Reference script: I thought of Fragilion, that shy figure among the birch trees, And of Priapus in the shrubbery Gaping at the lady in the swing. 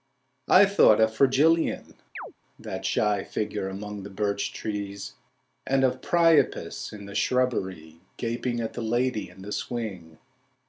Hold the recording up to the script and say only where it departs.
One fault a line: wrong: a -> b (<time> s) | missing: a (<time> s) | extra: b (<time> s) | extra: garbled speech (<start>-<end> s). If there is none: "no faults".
no faults